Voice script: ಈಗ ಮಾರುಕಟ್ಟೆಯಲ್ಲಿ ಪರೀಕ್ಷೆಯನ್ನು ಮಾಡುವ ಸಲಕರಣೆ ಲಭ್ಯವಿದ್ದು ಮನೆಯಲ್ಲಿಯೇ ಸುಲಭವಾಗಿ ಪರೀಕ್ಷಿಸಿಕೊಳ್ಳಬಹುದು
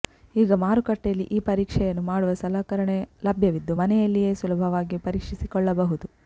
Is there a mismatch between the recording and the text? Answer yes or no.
yes